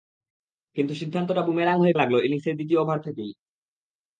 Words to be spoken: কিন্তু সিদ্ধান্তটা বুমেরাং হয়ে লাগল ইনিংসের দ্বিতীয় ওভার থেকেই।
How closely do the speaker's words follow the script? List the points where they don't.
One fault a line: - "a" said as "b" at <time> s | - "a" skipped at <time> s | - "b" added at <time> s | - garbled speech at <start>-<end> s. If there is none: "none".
none